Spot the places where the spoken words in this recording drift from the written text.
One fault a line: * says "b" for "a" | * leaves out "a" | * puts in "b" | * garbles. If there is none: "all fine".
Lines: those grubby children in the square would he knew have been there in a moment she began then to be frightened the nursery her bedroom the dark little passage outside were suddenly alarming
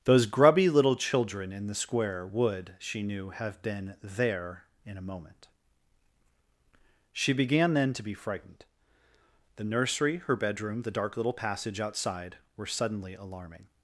* puts in "little"
* says "she" for "he"